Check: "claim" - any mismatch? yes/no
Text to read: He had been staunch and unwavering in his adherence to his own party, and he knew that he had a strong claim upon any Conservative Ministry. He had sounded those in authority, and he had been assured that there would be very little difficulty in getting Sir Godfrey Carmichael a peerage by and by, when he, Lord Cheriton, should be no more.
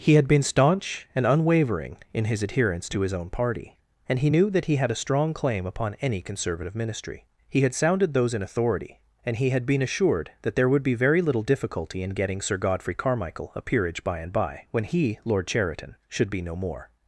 no